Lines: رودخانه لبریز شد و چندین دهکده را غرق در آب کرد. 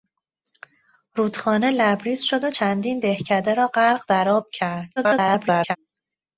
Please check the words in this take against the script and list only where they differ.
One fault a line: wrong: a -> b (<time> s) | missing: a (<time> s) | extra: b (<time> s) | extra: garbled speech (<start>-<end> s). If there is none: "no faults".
extra: garbled speech (5.0-5.8 s)